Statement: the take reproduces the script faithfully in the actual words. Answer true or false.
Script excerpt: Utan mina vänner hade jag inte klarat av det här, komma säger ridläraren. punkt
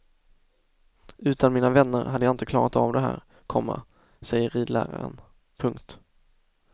true